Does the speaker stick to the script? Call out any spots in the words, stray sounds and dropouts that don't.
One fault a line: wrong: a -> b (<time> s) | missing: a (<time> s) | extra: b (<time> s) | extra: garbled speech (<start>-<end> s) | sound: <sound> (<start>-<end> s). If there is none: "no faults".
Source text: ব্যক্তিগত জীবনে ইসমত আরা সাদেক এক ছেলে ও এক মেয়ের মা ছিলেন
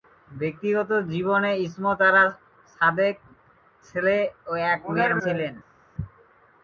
missing: এক (3.1 s)
missing: মা (5.1 s)